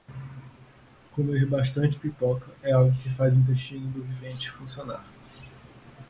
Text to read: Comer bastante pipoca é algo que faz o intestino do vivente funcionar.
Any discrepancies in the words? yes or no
no